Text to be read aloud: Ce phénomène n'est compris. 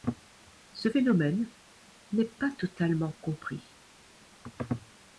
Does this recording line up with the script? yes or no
no